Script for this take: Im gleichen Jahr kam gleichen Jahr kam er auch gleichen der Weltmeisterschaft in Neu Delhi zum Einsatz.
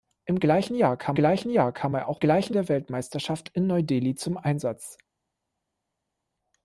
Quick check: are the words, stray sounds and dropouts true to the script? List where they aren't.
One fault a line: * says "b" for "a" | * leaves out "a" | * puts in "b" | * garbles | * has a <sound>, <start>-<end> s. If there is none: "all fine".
all fine